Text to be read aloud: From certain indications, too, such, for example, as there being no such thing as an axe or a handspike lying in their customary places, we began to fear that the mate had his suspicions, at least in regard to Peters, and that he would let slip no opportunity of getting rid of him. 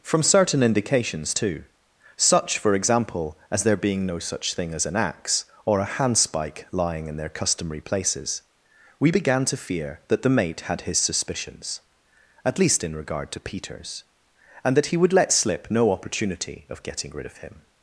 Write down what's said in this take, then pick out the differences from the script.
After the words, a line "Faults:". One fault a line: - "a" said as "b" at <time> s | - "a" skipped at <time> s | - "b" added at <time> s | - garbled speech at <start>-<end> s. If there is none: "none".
From certain indications, too, such, for example, as there being no such thing as an axe or a handspike lying in their customary places, we began to fear that the mate had his suspicions, at least in regard to Peters, and that he would let slip no opportunity of getting rid of him.
Faults:
none